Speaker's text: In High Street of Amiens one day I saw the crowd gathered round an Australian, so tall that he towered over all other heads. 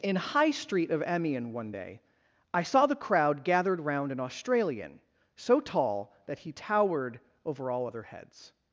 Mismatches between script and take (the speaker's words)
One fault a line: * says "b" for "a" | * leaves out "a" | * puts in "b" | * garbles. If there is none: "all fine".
all fine